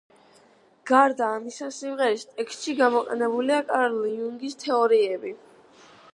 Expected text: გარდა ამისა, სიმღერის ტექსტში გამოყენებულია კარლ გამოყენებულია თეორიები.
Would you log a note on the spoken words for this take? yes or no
yes